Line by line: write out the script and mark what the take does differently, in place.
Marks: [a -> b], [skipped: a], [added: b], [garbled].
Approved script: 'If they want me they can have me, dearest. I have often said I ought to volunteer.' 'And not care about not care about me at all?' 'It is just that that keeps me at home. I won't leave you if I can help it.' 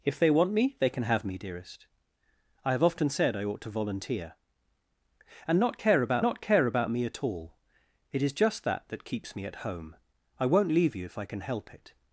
'If they want me they can have me, dearest. I have often said I ought to volunteer.' 'And not care about not care about me at all?' 'It is just that that keeps me at home. I won't leave you if I can help it.'